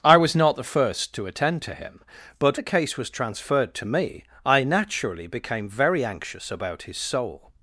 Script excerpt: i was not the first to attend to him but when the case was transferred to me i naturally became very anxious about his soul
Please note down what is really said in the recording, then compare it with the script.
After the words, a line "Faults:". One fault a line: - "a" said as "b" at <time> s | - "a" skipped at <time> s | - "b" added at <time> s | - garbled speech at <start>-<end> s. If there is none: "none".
i was not the first to attend to him but the case was transferred to me i naturally became very anxious about his soul
Faults:
- "when" skipped at 2.6 s